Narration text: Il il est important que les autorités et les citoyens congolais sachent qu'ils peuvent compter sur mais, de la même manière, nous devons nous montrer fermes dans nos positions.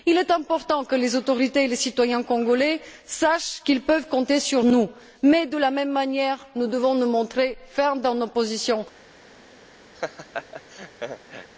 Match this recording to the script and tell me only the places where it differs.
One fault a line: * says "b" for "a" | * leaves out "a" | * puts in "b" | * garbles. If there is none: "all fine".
* leaves out "il"
* puts in "nous"